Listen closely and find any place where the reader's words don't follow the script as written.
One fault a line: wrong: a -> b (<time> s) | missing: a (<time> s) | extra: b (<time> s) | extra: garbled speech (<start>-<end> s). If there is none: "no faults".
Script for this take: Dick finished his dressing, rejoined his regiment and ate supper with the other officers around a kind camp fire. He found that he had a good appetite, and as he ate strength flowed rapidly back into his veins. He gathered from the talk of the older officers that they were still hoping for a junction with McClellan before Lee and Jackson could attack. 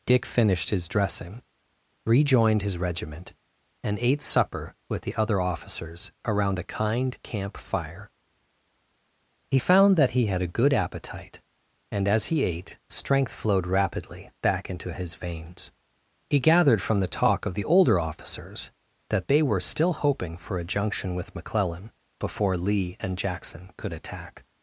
no faults